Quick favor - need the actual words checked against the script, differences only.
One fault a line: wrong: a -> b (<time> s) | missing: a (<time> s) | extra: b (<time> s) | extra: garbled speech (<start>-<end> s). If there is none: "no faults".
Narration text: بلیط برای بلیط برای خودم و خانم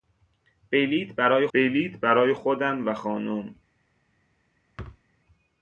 no faults